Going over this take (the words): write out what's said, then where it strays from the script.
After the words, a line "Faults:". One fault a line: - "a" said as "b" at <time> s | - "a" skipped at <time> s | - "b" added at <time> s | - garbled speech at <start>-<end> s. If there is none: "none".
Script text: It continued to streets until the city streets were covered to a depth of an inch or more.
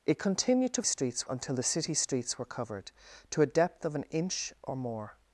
It continued to streets until the city streets were covered to a depth of an inch or more.
Faults:
none